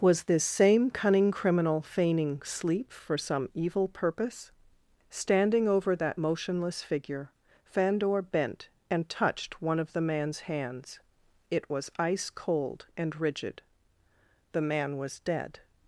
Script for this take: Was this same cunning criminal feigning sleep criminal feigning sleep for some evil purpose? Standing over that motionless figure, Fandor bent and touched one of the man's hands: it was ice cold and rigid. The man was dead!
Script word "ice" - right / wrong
right